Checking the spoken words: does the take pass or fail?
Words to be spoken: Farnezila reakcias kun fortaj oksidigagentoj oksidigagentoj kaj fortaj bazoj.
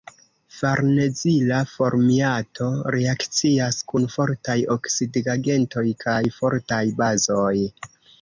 fail